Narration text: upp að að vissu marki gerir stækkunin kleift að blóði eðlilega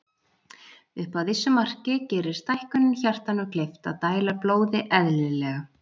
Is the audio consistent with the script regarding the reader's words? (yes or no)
no